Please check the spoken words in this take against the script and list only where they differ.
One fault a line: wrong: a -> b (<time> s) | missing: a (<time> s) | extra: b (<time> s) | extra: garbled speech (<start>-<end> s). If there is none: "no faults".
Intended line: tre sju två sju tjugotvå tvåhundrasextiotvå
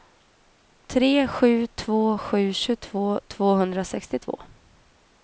no faults